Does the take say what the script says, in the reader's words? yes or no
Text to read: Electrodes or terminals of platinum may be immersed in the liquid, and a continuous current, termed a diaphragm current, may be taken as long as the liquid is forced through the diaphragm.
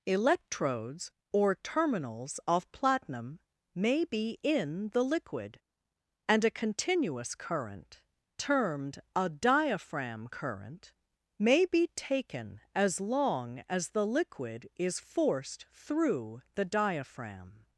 no